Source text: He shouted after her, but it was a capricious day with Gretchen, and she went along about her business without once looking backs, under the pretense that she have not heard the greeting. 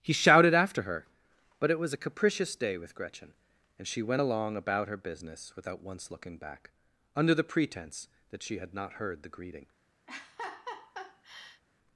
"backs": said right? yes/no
no